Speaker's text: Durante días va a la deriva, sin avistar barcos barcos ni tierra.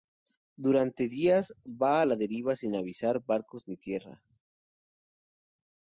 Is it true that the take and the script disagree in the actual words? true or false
true